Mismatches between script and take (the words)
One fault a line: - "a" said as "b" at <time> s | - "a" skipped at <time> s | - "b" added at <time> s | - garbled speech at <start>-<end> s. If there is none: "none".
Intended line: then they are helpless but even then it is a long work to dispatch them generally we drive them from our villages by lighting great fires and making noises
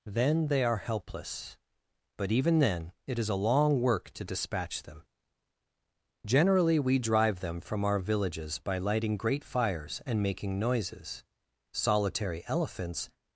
- "solitary elephants" added at 11.7 s